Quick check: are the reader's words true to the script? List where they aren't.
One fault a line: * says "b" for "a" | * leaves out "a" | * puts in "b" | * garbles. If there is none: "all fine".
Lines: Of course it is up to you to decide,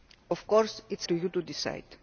* leaves out "up"